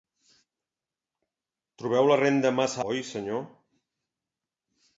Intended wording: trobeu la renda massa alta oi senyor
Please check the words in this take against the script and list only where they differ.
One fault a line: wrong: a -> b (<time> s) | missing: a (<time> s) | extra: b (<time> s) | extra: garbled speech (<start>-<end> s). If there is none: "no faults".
missing: alta (2.8 s)